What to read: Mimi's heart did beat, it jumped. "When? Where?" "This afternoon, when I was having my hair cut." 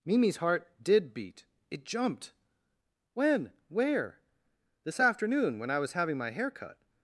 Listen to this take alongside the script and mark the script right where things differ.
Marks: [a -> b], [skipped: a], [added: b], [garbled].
Mimi's heart did beat, it jumped. "When? Where?" "This afternoon, when I was having my hair cut."